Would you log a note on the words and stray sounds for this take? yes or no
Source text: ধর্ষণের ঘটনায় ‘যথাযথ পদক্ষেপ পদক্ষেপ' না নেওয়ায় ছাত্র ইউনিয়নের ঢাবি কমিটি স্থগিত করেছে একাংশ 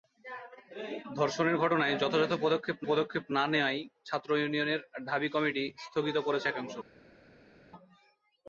no